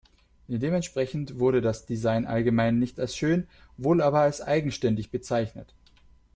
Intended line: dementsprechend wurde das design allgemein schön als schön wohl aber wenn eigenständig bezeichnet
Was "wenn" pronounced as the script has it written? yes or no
no